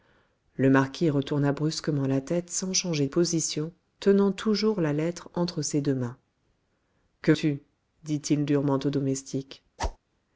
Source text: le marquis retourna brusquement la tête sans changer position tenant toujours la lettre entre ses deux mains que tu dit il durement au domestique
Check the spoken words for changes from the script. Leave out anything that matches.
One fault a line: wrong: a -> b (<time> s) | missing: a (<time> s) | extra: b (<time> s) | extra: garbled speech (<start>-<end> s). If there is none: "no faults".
no faults